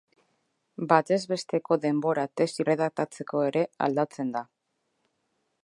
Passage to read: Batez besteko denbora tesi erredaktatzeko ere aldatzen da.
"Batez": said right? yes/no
yes